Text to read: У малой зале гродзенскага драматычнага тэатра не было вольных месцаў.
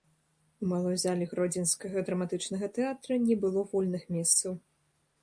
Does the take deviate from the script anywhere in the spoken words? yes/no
no